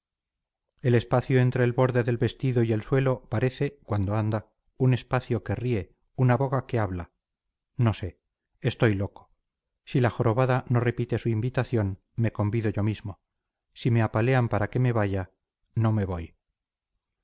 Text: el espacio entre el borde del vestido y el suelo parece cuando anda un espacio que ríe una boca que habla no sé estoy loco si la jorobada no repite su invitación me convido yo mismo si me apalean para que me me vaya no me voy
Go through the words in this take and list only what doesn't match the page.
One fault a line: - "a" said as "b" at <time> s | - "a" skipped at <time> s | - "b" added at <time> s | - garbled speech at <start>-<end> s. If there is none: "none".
- "me" skipped at 14.9 s